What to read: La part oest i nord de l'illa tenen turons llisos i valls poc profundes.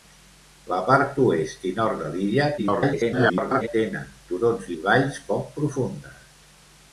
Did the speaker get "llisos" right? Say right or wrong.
wrong